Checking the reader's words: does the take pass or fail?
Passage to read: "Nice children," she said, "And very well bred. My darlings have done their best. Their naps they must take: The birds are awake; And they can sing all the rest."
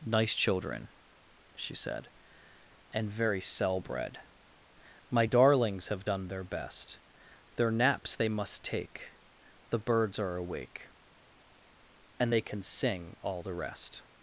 fail